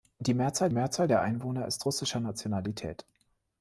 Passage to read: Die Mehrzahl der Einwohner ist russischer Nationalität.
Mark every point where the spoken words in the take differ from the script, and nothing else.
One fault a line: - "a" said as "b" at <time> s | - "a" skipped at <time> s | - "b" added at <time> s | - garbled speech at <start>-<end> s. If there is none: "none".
- "Mehrzahl" added at 0.7 s